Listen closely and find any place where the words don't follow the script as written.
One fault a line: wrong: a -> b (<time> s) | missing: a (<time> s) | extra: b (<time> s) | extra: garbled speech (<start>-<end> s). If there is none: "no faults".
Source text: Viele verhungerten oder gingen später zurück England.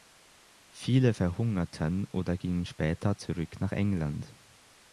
extra: nach (3.6 s)